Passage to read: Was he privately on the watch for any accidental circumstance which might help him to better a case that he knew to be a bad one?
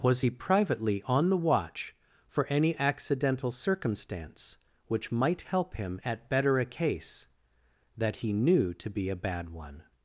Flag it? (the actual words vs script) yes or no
yes